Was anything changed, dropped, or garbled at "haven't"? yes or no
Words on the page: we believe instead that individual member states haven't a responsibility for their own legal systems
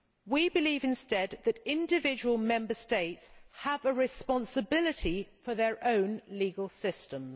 yes